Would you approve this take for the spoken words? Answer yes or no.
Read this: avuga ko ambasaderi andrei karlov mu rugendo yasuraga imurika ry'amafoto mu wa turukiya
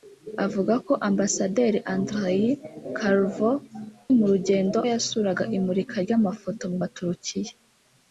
yes